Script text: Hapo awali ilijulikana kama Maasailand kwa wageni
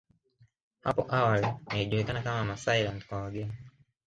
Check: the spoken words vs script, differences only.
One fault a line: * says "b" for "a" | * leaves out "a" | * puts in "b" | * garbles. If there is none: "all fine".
all fine